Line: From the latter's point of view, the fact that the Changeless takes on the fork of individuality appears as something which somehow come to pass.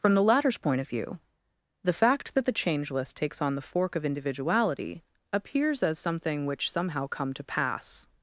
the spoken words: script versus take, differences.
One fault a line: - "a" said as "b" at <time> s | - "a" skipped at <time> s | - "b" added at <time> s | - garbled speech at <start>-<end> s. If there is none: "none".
none